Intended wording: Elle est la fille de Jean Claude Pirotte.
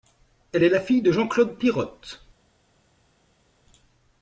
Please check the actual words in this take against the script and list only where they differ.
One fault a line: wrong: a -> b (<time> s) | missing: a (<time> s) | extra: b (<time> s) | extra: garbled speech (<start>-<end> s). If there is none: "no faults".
no faults